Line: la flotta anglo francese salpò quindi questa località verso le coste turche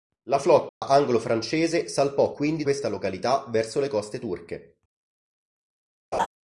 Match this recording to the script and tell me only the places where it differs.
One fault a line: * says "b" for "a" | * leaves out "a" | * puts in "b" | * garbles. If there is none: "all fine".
all fine